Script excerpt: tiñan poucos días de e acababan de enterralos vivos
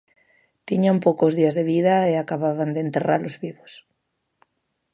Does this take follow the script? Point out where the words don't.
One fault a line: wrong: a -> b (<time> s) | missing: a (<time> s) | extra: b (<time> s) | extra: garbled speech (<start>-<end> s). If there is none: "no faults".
extra: vida (1.7 s)